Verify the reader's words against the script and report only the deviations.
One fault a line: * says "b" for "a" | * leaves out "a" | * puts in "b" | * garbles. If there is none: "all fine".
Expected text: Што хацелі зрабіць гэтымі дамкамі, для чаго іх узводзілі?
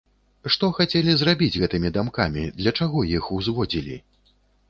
all fine